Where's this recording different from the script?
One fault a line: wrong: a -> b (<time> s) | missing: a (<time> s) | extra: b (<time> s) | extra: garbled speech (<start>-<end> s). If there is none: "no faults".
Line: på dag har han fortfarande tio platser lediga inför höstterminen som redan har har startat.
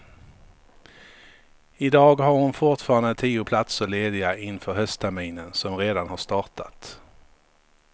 wrong: på -> I (1.8 s)
wrong: han -> hon (2.3 s)
missing: har (6.2 s)